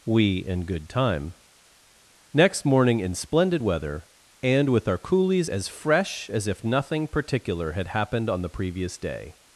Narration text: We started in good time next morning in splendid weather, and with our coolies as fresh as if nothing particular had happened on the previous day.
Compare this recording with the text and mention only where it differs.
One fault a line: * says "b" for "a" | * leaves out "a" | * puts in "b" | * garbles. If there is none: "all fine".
* leaves out "started"